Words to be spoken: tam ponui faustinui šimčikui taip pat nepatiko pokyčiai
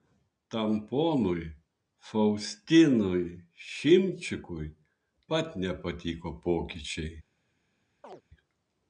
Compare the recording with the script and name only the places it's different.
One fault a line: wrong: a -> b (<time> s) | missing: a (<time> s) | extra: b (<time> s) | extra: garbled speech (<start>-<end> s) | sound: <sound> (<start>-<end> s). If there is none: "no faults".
missing: taip (4.7 s)
sound: chirp (8.0-8.2 s)